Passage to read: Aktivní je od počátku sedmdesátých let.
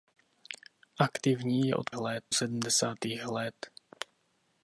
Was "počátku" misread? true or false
true